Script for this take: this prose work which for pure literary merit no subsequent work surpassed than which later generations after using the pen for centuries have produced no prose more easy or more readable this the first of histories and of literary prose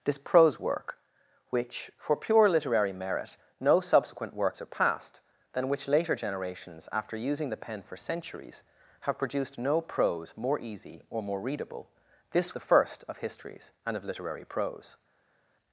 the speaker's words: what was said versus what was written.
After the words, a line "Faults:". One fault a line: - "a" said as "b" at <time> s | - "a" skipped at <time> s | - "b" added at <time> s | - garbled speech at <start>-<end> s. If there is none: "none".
this prose work which for pure literary merit no subsequent work surpassed than which later generations after using the pen for centuries have produced no prose more easy or more readable this the first of histories and of literary prose
Faults:
none